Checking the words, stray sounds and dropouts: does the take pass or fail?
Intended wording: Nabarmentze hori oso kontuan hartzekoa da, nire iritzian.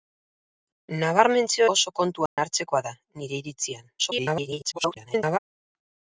fail